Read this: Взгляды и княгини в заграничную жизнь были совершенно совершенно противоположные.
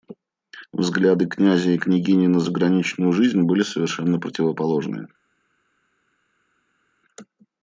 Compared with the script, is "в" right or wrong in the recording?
wrong